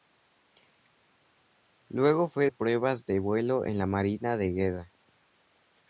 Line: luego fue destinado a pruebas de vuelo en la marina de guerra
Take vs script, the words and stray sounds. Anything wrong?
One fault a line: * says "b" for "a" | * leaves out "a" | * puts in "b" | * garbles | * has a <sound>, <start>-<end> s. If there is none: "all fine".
* leaves out "destinado"